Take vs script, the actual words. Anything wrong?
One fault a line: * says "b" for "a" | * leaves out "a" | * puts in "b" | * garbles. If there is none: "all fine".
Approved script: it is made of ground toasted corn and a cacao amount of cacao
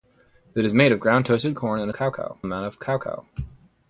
all fine